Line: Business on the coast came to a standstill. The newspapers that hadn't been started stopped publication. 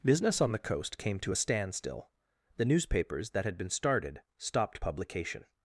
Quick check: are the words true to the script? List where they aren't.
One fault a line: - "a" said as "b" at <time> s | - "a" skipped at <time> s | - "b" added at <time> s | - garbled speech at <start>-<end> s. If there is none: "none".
- "hadn't" said as "had" at 3.4 s